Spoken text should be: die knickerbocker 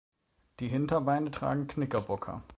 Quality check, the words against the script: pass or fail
fail